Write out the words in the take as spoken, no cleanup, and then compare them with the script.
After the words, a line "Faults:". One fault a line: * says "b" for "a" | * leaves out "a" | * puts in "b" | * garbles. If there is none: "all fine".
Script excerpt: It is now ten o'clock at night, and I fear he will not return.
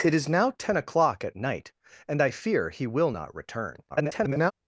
It is now ten o'clock at night, and I fear he will not return. [garbled]
Faults:
* garbles